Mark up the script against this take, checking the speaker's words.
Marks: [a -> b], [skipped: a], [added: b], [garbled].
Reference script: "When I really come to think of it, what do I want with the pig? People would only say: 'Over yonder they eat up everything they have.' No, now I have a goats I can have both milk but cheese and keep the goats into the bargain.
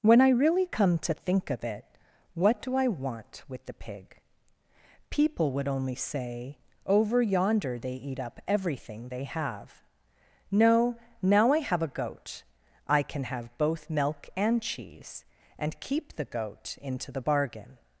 "When I really come to think of it, what do I want with the pig? People would only say: 'Over yonder they eat up everything they have.' No, now I have a [goats -> goat] I can have both milk [but -> and] cheese and keep the [goats -> goat] into the bargain.